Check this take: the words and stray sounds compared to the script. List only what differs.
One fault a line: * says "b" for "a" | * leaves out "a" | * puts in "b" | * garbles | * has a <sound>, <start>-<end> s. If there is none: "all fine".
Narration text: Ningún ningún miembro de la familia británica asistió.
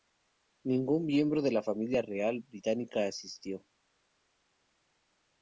* leaves out "ningún"
* puts in "real"